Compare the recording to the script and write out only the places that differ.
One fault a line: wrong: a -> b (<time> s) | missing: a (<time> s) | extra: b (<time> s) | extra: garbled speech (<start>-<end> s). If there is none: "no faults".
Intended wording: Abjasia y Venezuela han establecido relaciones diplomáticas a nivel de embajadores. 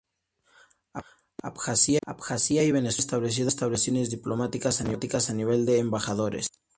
extra: abjasia (2.1 s)